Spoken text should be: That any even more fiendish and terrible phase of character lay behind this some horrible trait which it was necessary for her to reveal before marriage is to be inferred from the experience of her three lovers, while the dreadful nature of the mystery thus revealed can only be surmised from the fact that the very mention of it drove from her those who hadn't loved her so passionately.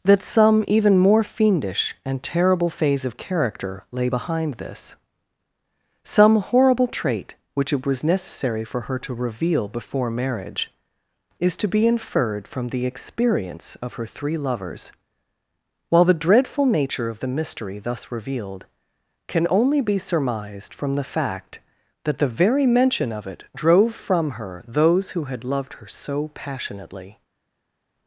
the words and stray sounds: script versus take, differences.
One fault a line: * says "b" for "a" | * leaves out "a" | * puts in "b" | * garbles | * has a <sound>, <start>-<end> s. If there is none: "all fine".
* says "some" for "any"
* says "had" for "hadn't"